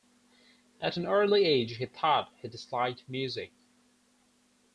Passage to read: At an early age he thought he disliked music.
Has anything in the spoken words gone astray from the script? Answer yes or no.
no